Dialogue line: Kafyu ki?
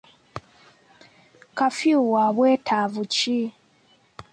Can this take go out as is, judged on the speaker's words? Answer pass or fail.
fail